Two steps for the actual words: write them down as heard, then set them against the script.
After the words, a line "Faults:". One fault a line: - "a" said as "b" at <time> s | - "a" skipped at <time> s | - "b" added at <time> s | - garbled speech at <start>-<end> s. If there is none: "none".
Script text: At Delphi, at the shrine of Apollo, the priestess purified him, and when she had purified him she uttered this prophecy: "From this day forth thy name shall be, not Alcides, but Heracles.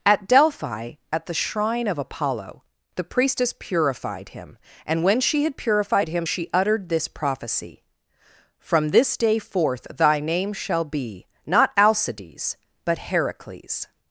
At Delphi, at the shrine of Apollo, the priestess purified him, and when she had purified him she uttered this prophecy: "From this day forth thy name shall be, not Alcides, but Heracles.
Faults:
none